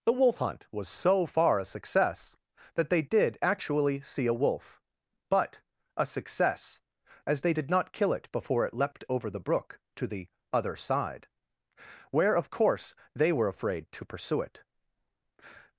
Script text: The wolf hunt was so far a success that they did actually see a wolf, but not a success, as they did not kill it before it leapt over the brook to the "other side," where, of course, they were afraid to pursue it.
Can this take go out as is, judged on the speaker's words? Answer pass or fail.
fail